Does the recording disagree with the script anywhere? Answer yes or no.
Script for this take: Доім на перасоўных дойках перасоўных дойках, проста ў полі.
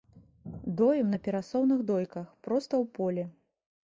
yes